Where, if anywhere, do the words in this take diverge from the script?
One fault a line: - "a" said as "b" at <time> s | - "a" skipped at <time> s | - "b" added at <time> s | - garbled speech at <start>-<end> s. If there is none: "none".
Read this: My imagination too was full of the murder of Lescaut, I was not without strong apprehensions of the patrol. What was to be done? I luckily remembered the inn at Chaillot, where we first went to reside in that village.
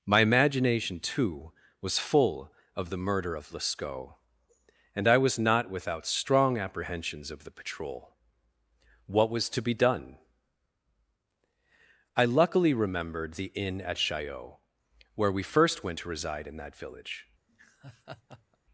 - "and" added at 5.0 s